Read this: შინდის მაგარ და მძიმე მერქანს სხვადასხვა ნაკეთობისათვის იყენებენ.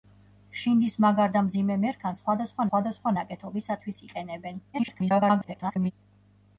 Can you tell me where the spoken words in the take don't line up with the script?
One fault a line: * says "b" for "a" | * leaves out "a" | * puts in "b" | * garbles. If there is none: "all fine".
* puts in "სხვადასხვა"
* garbles